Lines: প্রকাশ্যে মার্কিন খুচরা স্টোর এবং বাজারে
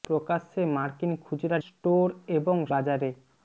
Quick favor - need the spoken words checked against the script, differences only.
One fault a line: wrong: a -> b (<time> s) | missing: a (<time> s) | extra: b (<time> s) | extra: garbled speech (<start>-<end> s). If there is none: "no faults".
no faults